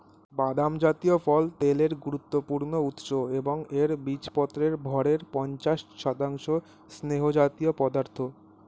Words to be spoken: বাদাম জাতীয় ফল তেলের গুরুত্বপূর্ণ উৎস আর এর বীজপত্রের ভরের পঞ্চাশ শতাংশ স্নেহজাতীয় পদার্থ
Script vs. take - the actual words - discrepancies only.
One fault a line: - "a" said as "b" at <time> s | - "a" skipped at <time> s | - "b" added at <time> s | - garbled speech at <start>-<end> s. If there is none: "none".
- "আর" said as "এবং" at 3.4 s